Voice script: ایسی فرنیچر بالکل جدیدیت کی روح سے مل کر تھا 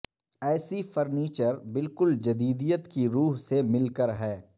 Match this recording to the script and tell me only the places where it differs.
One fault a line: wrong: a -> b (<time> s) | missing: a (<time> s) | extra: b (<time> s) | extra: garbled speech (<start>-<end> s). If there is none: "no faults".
wrong: تھا -> ہے (4.1 s)